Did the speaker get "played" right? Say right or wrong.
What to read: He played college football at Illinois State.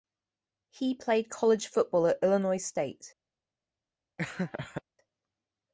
right